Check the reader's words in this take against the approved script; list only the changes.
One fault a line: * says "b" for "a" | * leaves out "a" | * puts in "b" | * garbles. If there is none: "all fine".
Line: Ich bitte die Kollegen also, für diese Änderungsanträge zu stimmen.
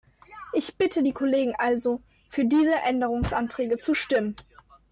all fine